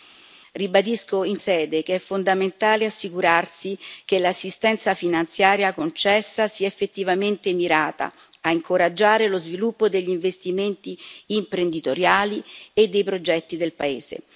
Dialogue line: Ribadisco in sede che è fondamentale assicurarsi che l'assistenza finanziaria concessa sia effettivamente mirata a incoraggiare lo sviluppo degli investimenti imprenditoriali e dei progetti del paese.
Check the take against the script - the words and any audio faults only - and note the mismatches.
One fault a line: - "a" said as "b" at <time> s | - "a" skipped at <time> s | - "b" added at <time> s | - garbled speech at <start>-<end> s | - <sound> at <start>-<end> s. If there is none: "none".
none